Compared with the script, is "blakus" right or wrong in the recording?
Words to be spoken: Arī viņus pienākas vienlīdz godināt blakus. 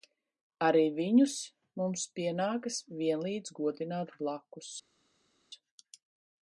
right